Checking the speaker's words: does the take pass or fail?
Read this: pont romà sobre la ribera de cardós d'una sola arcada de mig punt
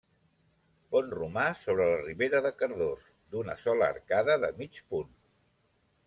pass